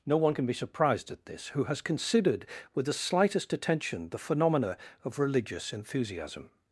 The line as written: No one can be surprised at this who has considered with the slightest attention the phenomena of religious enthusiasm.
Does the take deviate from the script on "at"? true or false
false